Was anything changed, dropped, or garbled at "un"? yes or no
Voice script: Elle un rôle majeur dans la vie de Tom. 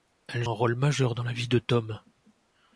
no